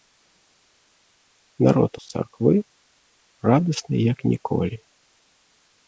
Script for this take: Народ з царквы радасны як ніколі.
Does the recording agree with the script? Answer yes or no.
yes